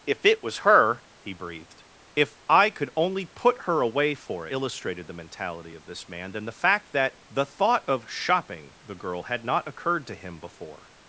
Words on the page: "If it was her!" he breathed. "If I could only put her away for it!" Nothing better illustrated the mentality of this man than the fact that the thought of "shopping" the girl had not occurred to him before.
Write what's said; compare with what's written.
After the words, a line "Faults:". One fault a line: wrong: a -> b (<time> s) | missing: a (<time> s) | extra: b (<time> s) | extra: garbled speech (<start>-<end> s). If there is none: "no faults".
"If it was her!" he breathed. "If I could only put her away for illustrated the mentality of this man than the fact that the thought of "shopping" the girl had not occurred to him before.
Faults:
missing: it Nothing better (4.5 s)